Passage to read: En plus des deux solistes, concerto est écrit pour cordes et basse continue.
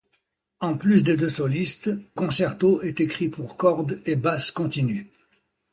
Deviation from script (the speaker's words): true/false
false